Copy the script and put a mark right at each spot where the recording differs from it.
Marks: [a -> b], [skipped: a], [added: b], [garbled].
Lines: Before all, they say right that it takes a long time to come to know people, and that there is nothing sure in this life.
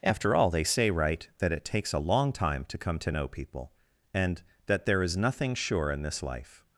[Before -> After] all, they say right that it takes a long time to come to know people, and that there is nothing sure in this life.